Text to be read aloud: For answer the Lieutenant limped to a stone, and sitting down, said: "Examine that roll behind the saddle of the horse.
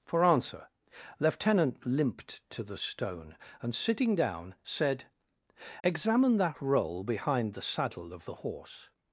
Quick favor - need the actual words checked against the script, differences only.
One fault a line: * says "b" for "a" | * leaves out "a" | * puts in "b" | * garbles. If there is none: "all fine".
* leaves out "the"
* says "the" for "a"